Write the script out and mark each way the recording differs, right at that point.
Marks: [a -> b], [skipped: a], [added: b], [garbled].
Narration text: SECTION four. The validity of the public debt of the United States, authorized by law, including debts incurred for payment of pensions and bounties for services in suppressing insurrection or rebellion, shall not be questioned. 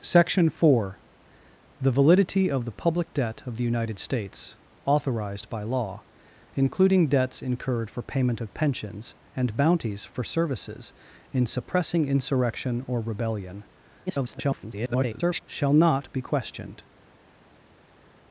SECTION four. The validity of the public debt of the United States, authorized by law, including debts incurred for payment of pensions and bounties for services in suppressing insurrection or rebellion, [garbled] shall not be questioned.